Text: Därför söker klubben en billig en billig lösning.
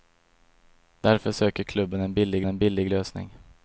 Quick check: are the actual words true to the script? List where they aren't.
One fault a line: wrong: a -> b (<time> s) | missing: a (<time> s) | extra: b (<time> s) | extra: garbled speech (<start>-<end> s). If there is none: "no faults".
no faults